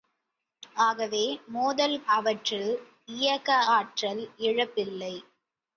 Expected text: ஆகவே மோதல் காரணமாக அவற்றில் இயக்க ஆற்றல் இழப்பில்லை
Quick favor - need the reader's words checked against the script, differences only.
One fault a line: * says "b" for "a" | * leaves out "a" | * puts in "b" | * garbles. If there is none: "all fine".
* leaves out "காரணமாக"